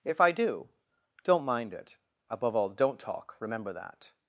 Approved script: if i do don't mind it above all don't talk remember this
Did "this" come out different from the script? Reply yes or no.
yes